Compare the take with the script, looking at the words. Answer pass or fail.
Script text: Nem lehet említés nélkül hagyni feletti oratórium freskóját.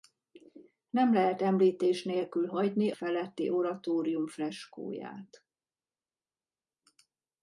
pass